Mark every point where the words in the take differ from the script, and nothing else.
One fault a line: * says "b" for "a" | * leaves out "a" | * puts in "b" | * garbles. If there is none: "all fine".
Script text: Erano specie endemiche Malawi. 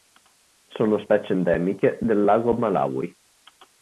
* says "Sono" for "Erano"
* puts in "del Lago"